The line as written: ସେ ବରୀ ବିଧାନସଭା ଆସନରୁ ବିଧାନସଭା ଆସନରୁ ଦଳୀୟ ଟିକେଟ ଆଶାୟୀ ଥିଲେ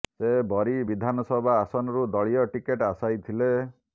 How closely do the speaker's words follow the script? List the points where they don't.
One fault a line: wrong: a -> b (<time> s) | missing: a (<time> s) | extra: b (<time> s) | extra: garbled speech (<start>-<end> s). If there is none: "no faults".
missing: ବିଧାନସଭା ଆସନରୁ (2.1 s)